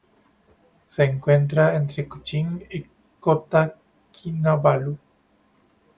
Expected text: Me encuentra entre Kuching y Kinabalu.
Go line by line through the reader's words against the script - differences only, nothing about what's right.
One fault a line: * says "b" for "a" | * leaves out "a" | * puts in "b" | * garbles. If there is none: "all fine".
* says "Se" for "Me"
* puts in "Kota"